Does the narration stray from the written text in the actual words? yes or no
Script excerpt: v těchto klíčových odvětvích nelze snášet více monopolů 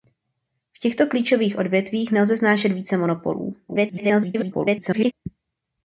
yes